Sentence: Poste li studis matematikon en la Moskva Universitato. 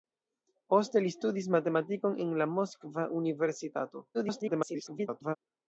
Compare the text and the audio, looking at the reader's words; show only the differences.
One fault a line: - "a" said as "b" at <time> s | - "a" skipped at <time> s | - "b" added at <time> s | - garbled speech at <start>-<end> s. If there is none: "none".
- garbled speech at 4.1-5.4 s